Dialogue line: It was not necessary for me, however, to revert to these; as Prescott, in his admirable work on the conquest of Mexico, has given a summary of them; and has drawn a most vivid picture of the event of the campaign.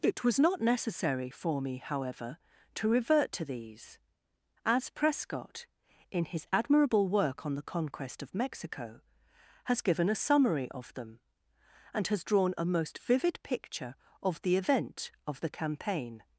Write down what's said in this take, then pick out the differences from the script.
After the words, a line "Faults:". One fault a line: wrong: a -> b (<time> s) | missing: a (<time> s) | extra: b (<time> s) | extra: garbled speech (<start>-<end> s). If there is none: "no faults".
It was not necessary for me, however, to revert to these; as Prescott, in his admirable work on the conquest of Mexico, has given a summary of them; and has drawn a most vivid picture of the event of the campaign.
Faults:
no faults